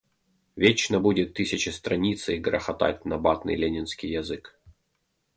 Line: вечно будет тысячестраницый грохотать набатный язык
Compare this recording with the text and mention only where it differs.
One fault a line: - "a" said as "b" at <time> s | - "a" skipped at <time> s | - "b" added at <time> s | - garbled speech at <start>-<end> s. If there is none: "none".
- "ленинский" added at 3.6 s